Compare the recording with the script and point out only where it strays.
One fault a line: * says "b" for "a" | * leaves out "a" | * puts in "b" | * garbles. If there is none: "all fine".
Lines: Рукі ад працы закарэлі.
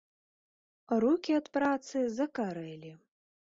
all fine